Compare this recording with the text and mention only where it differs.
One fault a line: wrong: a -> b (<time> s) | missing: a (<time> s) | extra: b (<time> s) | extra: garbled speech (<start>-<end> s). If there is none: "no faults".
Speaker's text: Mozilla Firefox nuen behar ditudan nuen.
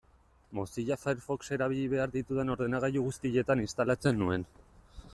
wrong: nuen -> erabili (1.6 s)
extra: ordenagailu guztietan instalatzen (2.5 s)